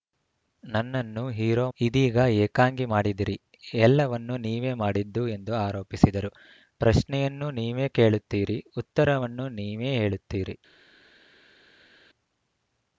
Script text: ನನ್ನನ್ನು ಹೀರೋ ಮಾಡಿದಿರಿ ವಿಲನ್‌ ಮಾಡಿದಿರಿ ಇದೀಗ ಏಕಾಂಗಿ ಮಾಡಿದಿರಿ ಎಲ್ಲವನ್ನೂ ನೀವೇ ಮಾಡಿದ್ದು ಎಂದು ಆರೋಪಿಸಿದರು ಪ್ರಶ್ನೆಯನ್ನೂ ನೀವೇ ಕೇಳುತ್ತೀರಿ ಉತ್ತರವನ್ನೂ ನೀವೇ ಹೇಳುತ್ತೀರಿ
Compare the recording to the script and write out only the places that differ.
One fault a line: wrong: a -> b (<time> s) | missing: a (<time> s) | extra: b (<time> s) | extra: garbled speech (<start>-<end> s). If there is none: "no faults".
missing: ಮಾಡಿದಿರಿ ವಿಲನ್ ಮಾಡಿದಿರಿ (1.6 s)